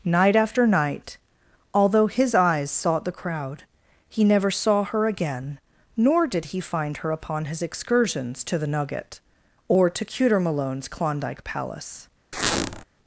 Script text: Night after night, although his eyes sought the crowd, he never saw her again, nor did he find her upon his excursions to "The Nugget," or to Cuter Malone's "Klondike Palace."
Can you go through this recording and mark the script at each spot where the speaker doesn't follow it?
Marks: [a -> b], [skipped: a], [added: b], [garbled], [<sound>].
Night after night, although his eyes sought the crowd, he never saw her again, nor did he find her upon his excursions to "The Nugget," or to Cuter Malone's "Klondike Palace." [squeak]